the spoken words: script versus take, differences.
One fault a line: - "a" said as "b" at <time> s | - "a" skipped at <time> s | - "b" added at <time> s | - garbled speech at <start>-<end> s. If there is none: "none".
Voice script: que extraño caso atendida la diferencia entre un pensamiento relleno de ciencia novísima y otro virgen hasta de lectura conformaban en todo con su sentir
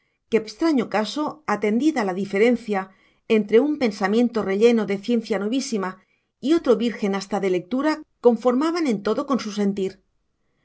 none